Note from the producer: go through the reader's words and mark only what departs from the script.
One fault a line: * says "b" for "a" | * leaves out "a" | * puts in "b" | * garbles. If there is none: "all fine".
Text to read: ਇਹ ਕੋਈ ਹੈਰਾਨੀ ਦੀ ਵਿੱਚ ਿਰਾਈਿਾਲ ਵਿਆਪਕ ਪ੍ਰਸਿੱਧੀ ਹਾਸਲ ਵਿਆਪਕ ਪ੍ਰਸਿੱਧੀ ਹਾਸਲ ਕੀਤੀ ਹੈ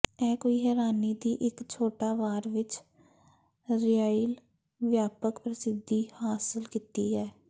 * says "ਇੱਕ ਛੋਟਾ ਵਾਰ ਵਿੱਚ ਿਰਾਈਿਾਲ" for "ਵਿੱਚ ਿਰਾਈਿਾਲ ਵਿਆਪਕ ਪ੍ਰਸਿੱਧੀ ਹਾਸਲ"